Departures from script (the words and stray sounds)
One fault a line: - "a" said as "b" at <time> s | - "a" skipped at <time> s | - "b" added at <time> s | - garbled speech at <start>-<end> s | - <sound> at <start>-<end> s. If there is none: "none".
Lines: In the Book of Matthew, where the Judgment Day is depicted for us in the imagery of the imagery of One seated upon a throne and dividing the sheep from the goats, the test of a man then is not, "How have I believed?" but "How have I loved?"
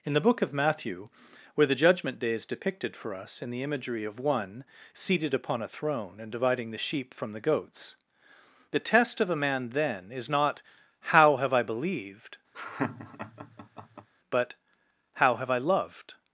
- "the imagery of" skipped at 4.2 s
- laugh at 12.5-14.1 s